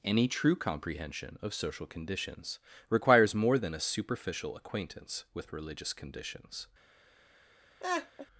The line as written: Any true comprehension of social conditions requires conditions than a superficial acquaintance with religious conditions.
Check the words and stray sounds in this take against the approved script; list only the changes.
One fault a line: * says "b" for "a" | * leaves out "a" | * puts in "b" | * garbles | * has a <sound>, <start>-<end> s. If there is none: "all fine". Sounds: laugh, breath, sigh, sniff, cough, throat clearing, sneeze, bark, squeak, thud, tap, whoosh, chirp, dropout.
* says "more" for "conditions"
* has a laugh, 7.8-8.3 s